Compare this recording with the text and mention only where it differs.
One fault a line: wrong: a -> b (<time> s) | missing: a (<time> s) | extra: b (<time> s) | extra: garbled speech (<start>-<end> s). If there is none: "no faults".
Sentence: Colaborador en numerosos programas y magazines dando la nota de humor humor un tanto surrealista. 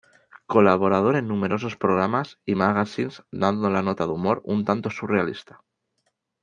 missing: humor (4.4 s)